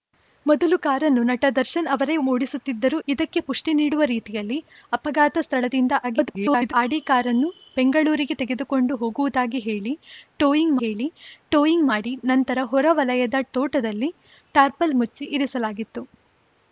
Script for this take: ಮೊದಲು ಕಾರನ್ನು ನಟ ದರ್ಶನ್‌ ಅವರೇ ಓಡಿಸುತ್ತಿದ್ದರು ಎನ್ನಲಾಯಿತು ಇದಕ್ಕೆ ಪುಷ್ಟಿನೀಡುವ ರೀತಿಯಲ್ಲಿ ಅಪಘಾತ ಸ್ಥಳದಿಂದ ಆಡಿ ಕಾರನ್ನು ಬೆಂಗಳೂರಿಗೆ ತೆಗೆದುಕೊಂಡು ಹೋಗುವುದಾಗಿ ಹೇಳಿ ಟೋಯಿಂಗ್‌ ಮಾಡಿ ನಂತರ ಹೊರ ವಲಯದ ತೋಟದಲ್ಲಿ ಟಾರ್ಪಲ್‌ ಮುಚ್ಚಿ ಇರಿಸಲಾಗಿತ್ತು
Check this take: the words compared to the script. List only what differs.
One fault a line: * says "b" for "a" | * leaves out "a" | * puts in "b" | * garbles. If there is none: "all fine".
* leaves out "ಎನ್ನಲಾಯಿತು"
* garbles
* puts in "ಹೇಳಿ ಟೋಯಿಂಗ್"